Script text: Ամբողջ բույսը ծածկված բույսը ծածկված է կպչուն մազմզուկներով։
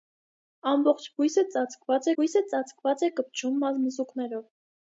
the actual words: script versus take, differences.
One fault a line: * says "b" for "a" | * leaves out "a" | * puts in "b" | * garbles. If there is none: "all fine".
all fine